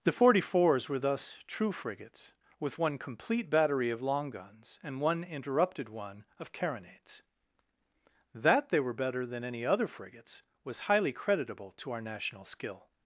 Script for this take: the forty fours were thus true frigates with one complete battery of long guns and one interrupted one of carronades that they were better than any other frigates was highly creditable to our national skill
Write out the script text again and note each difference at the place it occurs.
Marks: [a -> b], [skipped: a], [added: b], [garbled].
the forty fours were thus true frigates with one complete battery of long guns and one interrupted one of carronades that they were better than any other frigates was highly creditable to our national skill